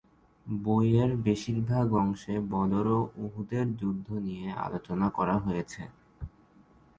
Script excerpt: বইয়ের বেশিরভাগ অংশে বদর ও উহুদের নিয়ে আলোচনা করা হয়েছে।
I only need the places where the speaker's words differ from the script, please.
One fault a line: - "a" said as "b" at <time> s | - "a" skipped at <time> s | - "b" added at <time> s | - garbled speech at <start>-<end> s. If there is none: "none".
- "যুদ্ধ" added at 3.8 s